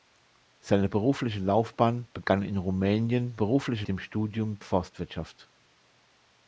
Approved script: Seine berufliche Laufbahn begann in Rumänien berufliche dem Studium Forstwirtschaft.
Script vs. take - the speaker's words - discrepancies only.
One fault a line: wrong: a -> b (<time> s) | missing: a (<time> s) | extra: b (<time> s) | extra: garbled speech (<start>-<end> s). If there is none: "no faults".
no faults